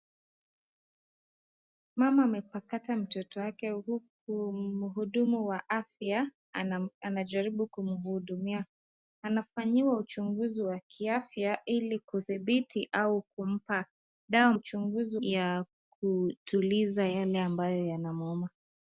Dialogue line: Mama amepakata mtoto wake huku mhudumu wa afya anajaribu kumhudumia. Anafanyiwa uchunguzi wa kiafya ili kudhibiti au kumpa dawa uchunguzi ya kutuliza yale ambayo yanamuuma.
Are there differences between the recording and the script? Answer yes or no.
no